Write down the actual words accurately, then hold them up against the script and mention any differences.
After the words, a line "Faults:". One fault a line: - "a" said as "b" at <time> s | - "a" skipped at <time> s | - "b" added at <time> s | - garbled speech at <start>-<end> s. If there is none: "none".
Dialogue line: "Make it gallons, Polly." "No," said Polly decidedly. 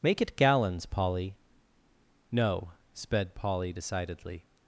"Make it gallons, Polly." "No," sped Polly decidedly.
Faults:
- "said" said as "sped" at 2.9 s